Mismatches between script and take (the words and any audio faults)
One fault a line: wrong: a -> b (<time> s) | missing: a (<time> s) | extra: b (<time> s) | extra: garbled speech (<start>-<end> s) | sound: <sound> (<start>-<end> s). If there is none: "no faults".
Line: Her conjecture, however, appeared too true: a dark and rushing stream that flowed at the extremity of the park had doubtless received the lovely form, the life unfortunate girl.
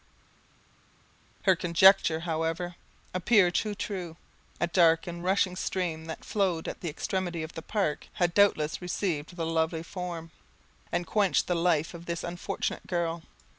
extra: and quenched (10.9 s)
extra: of this (11.9 s)